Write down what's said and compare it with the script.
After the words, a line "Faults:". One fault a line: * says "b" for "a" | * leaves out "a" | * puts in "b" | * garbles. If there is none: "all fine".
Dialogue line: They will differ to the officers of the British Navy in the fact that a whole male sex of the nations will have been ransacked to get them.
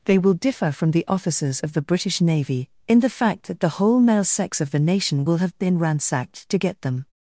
They will differ from the officers of the British Navy in the fact that the whole male sex of the nation will have been ransacked to get them.
Faults:
* says "from" for "to"
* says "the" for "a"
* says "nation" for "nations"